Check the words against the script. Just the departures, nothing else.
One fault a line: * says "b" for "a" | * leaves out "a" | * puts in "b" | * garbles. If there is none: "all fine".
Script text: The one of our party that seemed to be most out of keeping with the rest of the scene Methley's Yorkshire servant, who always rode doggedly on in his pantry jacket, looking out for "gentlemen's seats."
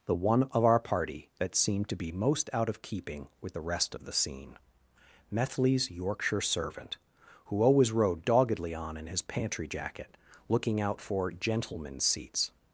all fine